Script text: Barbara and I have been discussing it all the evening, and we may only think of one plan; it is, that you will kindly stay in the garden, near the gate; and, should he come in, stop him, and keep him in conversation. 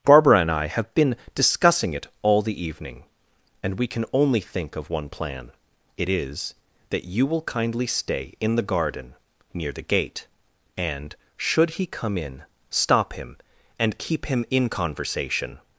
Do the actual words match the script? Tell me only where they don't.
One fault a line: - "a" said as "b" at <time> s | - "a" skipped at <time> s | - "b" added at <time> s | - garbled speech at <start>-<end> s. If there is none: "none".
- "may" said as "can" at 3.9 s